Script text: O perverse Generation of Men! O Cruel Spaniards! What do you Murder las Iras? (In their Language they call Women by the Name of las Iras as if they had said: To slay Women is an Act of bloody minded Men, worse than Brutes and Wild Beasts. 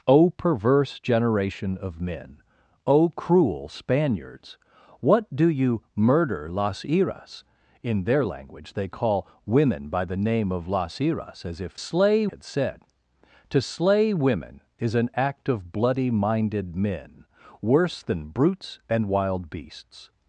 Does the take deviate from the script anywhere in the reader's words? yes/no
yes